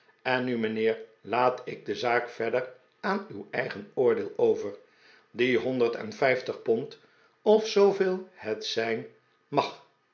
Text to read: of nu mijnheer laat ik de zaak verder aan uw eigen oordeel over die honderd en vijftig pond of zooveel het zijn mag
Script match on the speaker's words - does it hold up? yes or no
no